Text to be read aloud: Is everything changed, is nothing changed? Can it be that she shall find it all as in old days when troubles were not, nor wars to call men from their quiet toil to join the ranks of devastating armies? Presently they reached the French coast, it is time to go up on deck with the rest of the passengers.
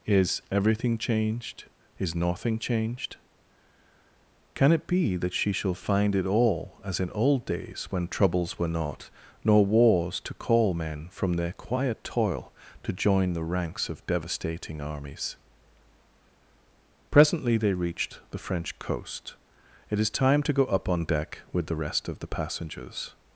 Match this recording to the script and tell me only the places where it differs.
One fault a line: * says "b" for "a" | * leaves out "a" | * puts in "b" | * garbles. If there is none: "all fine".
all fine